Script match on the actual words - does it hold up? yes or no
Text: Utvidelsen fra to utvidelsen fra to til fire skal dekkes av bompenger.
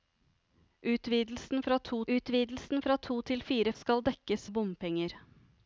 yes